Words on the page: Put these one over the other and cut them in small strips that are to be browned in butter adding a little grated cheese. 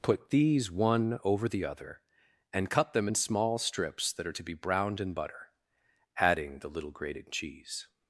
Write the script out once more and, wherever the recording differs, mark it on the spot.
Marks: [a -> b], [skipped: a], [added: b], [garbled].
Put these one over the other and cut them in small strips that are to be browned in butter adding [a -> the] little grated cheese.